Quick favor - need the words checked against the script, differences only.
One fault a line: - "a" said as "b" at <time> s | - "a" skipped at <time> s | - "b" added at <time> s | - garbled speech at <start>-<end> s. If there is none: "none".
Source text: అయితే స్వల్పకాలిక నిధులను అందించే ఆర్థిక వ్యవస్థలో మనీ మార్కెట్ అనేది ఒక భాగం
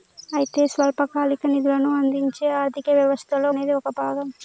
- "మనీ మార్కెట్" skipped at 3.5 s